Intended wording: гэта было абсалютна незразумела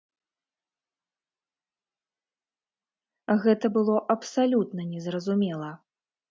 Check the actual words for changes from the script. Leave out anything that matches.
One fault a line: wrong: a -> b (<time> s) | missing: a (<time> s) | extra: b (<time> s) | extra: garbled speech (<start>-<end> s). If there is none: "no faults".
no faults